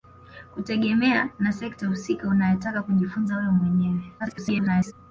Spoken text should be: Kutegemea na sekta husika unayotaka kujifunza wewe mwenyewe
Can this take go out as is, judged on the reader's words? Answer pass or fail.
fail